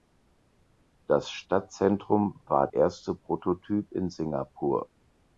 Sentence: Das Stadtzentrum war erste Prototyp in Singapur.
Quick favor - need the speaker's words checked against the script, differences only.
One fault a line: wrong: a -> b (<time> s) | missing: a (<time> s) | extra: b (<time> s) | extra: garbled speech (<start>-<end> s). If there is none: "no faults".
no faults